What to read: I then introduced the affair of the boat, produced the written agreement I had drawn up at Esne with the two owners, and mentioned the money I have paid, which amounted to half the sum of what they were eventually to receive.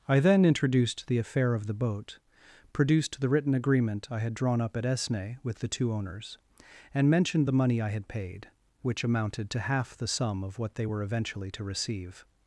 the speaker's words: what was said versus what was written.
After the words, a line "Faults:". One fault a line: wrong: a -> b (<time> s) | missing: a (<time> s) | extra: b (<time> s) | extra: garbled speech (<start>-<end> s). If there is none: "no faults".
I then introduced the affair of the boat, produced the written agreement I had drawn up at Esne with the two owners, and mentioned the money I had paid, which amounted to half the sum of what they were eventually to receive.
Faults:
wrong: have -> had (7.9 s)